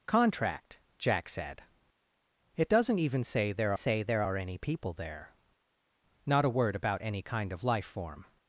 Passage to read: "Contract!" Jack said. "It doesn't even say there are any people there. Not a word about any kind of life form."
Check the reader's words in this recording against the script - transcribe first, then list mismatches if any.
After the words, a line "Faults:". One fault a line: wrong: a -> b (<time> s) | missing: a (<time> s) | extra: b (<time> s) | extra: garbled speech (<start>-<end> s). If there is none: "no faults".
"Contract!" Jack said. "It doesn't even say there say there are any people there. Not a word about any kind of life form."
Faults:
extra: say there (3.7 s)